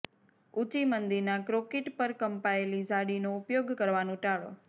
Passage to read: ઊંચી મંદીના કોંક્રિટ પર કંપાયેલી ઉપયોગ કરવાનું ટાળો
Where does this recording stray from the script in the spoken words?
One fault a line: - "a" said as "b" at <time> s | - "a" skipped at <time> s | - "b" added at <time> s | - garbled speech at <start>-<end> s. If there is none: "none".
- "ઝાડીનો" added at 2.9 s